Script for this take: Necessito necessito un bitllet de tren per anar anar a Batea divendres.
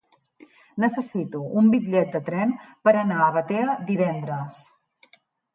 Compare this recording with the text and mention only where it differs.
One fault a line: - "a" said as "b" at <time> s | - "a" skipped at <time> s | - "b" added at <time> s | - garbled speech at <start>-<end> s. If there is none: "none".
- "necessito" skipped at 1.4 s
- "anar" skipped at 3.2 s